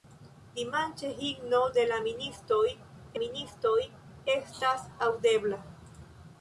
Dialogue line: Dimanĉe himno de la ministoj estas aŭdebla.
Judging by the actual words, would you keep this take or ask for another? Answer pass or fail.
fail